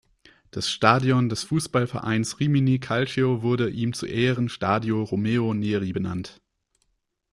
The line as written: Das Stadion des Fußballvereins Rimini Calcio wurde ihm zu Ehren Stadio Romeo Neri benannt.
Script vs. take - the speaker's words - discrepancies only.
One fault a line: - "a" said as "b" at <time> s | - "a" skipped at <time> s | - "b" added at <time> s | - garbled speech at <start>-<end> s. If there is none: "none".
none